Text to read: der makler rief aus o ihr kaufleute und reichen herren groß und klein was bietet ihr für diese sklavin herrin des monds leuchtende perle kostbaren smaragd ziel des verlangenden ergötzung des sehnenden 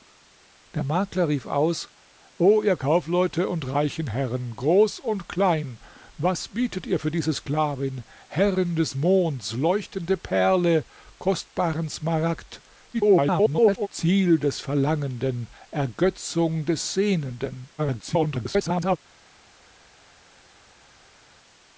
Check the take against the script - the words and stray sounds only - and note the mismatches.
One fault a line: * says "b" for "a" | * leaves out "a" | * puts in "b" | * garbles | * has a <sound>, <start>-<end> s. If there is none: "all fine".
* garbles
* garbles